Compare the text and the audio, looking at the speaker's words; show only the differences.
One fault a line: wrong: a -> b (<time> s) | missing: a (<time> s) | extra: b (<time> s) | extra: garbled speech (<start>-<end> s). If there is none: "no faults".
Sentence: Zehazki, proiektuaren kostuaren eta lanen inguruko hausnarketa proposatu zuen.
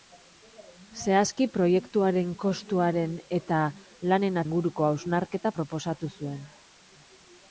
no faults